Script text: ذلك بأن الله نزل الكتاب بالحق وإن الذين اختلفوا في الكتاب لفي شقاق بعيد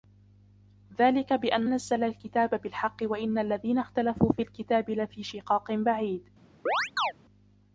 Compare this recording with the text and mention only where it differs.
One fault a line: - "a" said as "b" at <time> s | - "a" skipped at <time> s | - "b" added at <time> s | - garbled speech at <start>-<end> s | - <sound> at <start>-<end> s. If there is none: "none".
- "الله" skipped at 1.7 s
- chirp at 6.7-7.1 s